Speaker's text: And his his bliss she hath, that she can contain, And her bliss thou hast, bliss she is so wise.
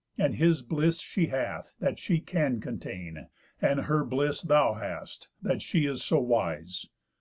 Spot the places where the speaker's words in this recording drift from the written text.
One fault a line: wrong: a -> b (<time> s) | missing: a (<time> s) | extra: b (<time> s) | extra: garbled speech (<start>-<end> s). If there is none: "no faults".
missing: his (0.6 s)
wrong: bliss -> that (5.4 s)